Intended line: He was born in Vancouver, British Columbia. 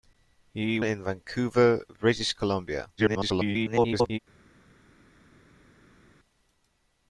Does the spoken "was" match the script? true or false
false